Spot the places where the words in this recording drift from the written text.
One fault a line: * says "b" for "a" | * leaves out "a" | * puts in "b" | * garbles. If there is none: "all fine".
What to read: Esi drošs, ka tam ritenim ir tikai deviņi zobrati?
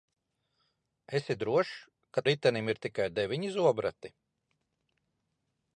* leaves out "tam"